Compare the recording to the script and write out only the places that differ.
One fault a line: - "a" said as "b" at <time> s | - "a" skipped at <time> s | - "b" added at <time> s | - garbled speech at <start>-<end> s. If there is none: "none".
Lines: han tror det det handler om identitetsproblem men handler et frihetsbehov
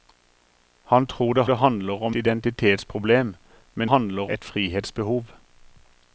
none